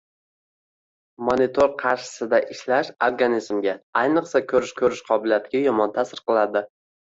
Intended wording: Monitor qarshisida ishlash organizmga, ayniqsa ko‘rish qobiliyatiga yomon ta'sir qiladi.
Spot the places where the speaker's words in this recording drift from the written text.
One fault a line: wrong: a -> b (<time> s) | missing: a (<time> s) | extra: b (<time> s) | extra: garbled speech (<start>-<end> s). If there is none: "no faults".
extra: ko‘rish (4.8 s)